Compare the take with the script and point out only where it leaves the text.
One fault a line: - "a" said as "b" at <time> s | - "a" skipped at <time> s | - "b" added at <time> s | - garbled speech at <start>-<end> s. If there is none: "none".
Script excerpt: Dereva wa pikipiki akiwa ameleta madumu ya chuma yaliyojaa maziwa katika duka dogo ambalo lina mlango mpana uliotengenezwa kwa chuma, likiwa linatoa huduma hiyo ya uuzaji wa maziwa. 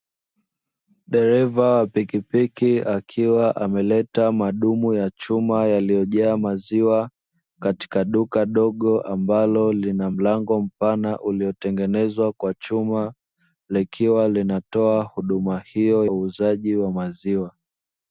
- "ya" skipped at 16.1 s